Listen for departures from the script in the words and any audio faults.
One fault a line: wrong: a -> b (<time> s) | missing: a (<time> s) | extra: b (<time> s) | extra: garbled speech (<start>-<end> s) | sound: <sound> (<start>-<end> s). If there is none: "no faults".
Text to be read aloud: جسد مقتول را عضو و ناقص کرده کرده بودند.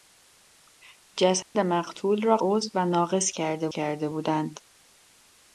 sound: dropout (1.4-1.6 s)